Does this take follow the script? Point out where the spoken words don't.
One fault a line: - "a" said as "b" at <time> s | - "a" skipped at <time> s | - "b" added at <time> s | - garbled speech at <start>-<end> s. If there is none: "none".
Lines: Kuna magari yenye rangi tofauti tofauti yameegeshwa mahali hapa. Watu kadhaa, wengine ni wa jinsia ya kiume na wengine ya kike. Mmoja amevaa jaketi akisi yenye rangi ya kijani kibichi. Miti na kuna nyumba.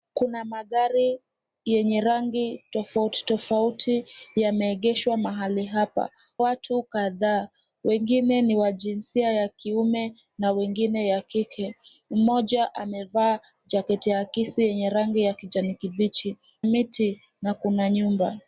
none